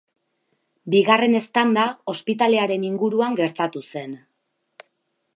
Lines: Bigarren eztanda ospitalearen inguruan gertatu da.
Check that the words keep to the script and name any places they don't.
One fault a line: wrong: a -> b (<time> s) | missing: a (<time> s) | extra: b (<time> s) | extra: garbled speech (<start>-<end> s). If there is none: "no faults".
wrong: da -> zen (3.9 s)